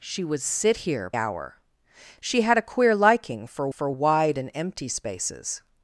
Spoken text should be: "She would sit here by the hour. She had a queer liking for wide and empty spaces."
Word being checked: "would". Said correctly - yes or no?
yes